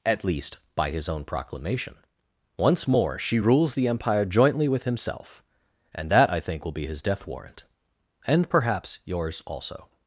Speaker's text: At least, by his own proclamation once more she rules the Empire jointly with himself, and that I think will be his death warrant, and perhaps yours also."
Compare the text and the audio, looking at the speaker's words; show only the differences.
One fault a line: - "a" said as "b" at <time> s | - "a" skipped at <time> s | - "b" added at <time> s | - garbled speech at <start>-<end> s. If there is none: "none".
none